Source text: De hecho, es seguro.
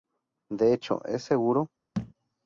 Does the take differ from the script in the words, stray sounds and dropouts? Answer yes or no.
yes